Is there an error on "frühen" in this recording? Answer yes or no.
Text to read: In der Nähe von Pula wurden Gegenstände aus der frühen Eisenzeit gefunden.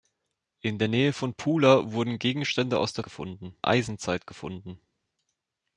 yes